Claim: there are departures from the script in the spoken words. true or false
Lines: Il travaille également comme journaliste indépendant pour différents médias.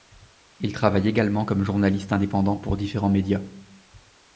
false